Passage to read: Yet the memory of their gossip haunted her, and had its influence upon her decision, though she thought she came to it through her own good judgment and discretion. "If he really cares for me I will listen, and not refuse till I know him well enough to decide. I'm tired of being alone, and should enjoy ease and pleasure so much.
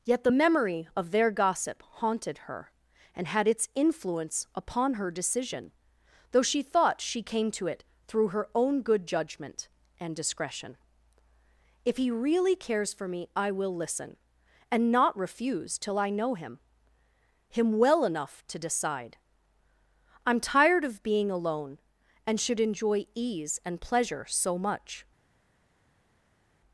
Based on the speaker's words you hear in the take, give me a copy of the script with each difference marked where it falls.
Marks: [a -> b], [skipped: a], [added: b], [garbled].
Yet the memory of their gossip haunted her, and had its influence upon her decision, though she thought she came to it through her own good judgment and discretion. "If he really cares for me I will listen, and not refuse till I know him [added: him] well enough to decide. I'm tired of being alone, and should enjoy ease and pleasure so much.